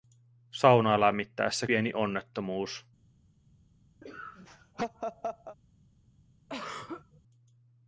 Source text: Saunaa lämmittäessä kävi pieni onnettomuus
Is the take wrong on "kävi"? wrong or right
wrong